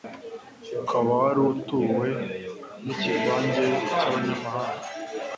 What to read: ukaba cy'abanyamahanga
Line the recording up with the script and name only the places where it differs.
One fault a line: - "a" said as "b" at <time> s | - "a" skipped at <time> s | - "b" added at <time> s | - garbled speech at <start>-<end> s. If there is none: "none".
- "wari utuwe n'ikivange" added at 1.2 s